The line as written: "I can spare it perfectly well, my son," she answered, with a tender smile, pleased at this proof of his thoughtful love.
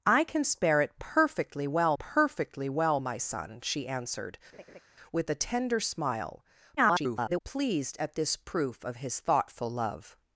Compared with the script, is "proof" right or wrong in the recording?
right